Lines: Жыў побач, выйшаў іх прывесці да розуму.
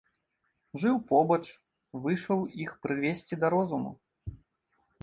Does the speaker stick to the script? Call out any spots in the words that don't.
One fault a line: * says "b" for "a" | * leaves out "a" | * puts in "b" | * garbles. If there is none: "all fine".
all fine